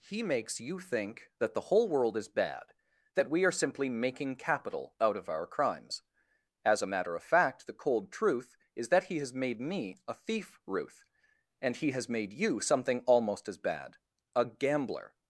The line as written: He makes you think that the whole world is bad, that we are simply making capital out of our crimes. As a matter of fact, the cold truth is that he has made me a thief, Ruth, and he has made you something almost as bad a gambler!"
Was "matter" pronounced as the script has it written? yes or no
yes